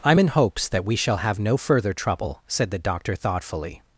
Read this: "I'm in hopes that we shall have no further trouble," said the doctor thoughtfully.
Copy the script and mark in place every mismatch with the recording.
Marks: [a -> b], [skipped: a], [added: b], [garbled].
"I'm in hopes that we shall have no further trouble," said the doctor thoughtfully.